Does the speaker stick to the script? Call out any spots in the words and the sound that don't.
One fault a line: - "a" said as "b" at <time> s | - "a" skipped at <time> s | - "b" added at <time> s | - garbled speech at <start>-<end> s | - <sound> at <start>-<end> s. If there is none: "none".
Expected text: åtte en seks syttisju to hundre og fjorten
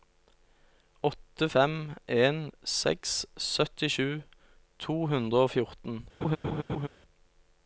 - "fem" added at 1.5 s
- laugh at 6.2-6.9 s